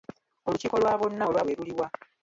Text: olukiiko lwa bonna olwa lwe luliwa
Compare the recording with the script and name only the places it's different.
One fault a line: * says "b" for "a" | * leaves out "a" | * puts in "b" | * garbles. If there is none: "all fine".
all fine